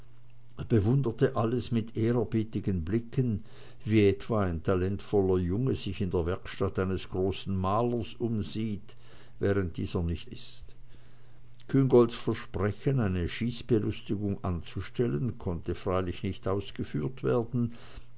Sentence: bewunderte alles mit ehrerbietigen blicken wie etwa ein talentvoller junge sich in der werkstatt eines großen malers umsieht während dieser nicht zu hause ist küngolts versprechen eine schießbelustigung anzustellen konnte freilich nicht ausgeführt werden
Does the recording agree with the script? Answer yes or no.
no